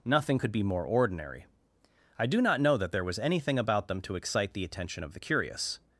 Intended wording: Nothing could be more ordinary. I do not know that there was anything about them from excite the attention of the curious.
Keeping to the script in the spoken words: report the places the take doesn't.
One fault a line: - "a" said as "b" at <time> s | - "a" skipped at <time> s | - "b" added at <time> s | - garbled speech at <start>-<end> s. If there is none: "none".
- "from" said as "to" at 4.0 s